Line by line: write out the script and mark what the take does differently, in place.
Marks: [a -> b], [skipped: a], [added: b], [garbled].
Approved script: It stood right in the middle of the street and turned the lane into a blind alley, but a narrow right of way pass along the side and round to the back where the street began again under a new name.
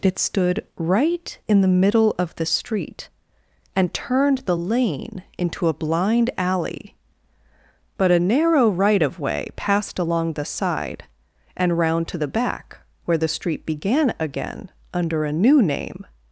It stood right in the middle of the street and turned the lane into a blind alley, but a narrow right of way [pass -> passed] along the side and round to the back where the street began again under a new name.